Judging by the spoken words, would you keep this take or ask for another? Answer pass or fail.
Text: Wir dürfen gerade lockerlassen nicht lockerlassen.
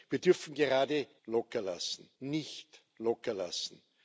pass